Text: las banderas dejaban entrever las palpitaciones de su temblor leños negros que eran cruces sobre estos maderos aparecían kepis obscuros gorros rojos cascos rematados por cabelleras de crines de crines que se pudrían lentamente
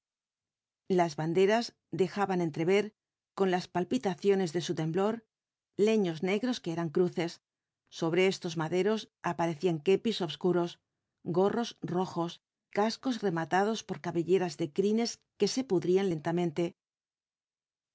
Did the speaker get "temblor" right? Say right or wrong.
right